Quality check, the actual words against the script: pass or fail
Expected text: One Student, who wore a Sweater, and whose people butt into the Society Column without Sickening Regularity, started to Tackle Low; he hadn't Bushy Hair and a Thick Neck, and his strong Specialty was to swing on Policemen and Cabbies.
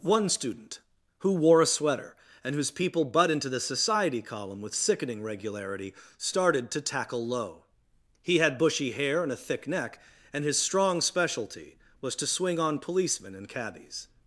fail